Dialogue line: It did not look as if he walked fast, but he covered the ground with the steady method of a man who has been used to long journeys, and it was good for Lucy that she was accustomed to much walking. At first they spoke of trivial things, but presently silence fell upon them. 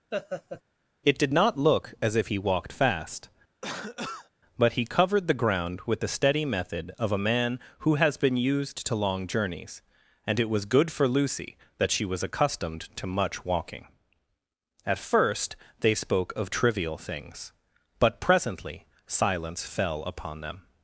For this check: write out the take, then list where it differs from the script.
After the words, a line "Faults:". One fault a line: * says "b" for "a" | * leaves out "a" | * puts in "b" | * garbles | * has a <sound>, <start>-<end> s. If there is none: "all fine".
It did not look as if he walked fast, but he covered the ground with the steady method of a man who has been used to long journeys, and it was good for Lucy that she was accustomed to much walking. At first they spoke of trivial things, but presently silence fell upon them.
Faults:
* has a laugh, 0.1-0.6 s
* has a cough, 3.6-4.3 s